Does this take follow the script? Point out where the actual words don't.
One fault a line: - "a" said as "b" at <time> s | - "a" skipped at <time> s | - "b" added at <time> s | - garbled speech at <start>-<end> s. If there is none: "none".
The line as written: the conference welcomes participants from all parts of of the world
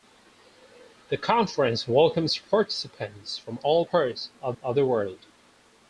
none